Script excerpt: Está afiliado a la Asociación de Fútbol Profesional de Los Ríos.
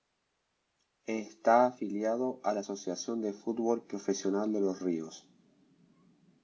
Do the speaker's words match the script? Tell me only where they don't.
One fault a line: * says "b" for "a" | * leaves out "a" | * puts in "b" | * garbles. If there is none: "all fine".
all fine